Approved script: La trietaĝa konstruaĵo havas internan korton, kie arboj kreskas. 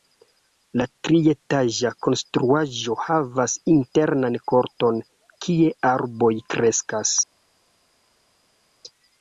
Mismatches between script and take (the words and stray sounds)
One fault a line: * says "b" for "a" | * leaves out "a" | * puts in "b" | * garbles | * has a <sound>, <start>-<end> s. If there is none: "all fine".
all fine